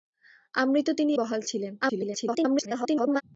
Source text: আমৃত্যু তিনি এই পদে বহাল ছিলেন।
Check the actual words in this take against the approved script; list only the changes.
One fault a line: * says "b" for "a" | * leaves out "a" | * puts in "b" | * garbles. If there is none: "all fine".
* leaves out "এই পদে"
* garbles